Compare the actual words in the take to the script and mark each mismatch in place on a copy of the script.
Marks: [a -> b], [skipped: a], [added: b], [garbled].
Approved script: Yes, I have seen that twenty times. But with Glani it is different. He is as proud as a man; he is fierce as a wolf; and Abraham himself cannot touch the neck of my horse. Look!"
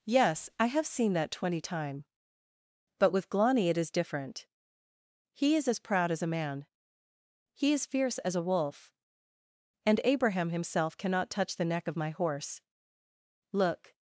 Yes, I have seen that twenty [times. -> time] But with Glani it is different. He is as proud as a man; he is fierce as a wolf; and Abraham himself cannot touch the neck of my horse. Look!"